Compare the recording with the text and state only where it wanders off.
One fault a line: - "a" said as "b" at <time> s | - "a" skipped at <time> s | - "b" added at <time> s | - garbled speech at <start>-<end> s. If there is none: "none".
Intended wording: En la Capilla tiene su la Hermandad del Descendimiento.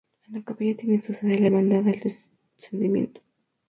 - "sede" added at 1.1 s